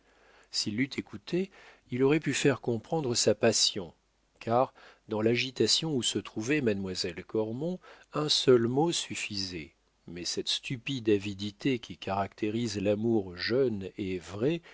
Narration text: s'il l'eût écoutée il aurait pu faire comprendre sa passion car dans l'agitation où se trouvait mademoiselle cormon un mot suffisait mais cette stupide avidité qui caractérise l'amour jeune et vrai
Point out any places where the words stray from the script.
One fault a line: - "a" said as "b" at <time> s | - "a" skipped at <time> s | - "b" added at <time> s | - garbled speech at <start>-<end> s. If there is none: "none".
- "seul" added at 8.3 s